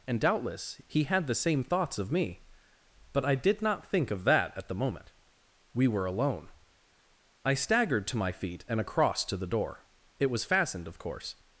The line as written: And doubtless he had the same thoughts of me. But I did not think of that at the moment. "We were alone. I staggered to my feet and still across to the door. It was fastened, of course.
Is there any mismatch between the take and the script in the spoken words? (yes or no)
yes